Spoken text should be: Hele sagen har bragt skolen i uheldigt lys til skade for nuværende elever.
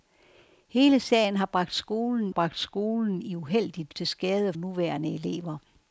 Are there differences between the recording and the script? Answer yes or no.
yes